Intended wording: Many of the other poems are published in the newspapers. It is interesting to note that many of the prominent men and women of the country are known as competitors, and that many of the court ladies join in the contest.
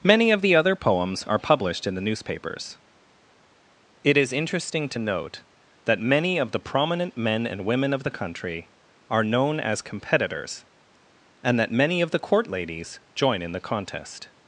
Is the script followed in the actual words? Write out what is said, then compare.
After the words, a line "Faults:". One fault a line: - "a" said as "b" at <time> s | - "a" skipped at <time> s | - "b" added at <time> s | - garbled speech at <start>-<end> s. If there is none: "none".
Many of the other poems are published in the newspapers. It is interesting to note that many of the prominent men and women of the country are known as competitors, and that many of the court ladies join in the contest.
Faults:
none